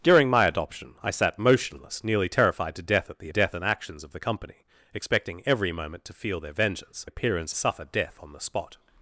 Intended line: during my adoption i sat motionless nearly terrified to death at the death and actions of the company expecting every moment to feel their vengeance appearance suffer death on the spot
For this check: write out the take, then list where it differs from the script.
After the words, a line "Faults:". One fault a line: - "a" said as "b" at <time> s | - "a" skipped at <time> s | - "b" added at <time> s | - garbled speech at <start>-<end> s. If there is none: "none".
during my adoption i sat motionless nearly terrified to death at the death and actions of the company expecting every moment to feel their vengeance appearance suffer death on the spot
Faults:
none